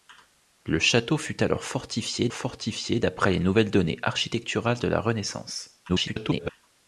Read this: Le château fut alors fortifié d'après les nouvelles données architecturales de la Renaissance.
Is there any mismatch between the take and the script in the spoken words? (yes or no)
yes